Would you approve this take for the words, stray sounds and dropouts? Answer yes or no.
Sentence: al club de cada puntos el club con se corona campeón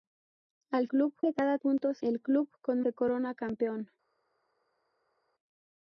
yes